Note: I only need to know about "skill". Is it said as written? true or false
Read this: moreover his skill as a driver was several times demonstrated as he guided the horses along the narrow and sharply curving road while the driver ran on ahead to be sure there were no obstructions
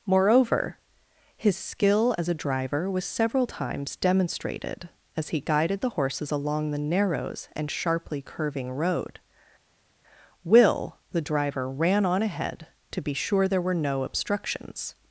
true